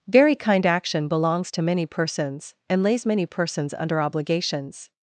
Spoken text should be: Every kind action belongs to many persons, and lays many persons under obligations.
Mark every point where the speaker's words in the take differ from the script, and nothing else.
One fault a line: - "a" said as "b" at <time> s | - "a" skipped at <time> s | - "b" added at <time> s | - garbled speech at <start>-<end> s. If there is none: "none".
- "Every" said as "Very" at 0.1 s